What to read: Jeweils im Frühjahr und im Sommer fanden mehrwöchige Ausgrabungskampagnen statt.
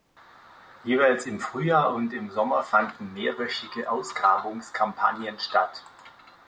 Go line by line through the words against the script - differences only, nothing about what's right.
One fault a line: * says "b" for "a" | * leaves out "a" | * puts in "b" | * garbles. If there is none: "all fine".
all fine